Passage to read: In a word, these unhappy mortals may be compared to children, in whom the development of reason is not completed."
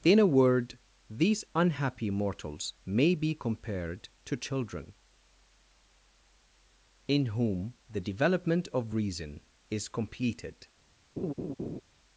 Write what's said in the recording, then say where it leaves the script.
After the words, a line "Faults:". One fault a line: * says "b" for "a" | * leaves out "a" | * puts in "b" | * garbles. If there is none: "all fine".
In a word, these unhappy mortals may be compared to children, in whom the development of reason is completed."
Faults:
* leaves out "not"